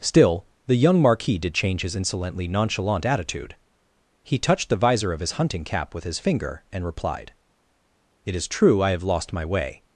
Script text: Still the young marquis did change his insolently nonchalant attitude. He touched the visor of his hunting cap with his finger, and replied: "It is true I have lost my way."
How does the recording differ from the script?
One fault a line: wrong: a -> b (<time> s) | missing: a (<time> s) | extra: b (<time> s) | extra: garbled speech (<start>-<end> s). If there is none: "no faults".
no faults